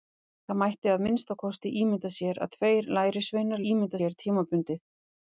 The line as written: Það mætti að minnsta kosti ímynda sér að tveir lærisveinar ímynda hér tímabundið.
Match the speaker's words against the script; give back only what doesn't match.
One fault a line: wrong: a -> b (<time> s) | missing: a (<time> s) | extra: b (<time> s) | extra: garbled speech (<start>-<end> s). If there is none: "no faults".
no faults